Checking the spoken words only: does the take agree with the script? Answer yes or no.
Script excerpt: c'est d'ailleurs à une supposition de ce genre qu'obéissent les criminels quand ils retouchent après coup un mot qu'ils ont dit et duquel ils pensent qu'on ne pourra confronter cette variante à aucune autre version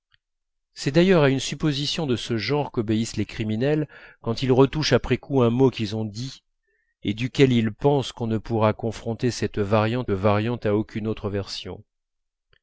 no